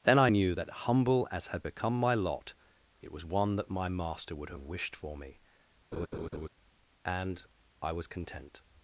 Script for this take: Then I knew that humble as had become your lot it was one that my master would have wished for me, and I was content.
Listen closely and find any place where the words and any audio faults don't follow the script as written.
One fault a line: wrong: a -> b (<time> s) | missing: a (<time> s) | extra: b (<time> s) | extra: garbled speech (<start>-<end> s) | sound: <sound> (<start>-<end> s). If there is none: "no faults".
wrong: your -> my (2.0 s)
sound: laugh (5.9-6.5 s)